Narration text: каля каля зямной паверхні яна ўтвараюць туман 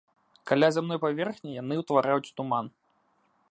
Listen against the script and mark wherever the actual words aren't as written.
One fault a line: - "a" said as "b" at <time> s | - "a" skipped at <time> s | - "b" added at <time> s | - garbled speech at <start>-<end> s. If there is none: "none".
- "каля" skipped at 0.7 s
- "яна" said as "яны" at 1.6 s